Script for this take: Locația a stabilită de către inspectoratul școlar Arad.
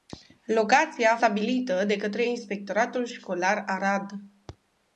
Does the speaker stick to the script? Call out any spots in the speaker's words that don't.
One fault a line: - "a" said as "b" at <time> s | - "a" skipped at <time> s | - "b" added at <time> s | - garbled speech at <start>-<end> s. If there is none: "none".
none